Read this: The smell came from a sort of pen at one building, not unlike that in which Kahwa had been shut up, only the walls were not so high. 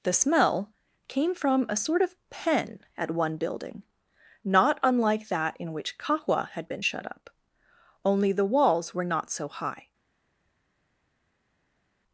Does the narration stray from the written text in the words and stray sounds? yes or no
no